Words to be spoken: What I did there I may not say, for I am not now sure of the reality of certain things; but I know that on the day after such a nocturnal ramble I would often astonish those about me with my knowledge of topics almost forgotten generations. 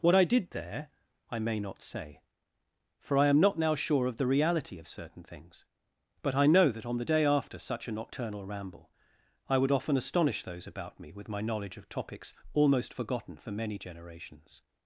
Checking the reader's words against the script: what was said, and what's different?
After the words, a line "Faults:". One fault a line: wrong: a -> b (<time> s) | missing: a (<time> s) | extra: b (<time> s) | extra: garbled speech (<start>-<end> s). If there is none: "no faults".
What I did there I may not say, for I am not now sure of the reality of certain things; but I know that on the day after such a nocturnal ramble I would often astonish those about me with my knowledge of topics almost forgotten for many generations.
Faults:
extra: for many (13.4 s)